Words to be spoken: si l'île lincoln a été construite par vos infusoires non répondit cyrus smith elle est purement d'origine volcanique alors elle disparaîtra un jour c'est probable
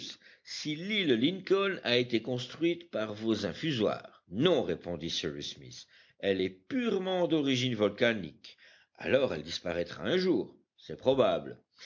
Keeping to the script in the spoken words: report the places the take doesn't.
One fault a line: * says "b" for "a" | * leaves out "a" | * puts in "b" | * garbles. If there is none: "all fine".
all fine